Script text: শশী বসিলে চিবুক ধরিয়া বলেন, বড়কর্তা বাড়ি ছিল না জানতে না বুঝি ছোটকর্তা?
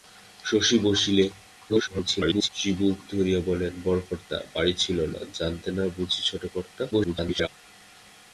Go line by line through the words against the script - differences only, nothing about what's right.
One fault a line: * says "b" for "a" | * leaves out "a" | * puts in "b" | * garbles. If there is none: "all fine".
* garbles
* garbles